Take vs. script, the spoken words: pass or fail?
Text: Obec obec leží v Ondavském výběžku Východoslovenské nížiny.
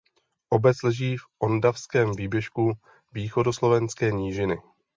fail